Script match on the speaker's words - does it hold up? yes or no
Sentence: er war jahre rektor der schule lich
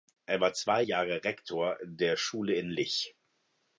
no